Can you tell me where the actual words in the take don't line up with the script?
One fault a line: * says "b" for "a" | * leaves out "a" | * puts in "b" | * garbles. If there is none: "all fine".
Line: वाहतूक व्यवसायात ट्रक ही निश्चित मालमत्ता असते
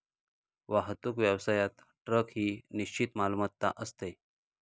all fine